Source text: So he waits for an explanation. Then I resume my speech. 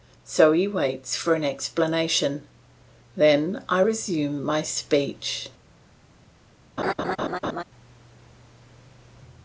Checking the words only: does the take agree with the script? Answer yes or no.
yes